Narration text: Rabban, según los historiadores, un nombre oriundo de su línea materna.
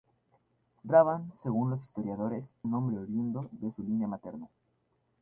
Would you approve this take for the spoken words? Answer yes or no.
yes